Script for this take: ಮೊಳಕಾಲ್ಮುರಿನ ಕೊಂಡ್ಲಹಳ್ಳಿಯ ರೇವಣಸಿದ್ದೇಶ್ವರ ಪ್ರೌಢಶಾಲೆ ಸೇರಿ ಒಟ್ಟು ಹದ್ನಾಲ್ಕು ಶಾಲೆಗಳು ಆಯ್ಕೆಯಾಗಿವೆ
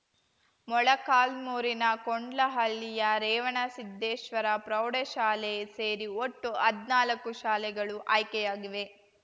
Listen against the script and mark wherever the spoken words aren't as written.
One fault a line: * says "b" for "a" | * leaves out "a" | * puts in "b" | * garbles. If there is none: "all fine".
all fine